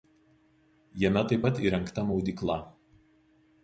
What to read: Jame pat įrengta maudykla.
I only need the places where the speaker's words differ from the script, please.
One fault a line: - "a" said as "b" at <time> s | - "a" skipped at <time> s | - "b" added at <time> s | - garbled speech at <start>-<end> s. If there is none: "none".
- "taip" added at 1.3 s